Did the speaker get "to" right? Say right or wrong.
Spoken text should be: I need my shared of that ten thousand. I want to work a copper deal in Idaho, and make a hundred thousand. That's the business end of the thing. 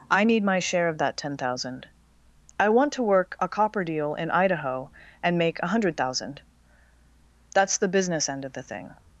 right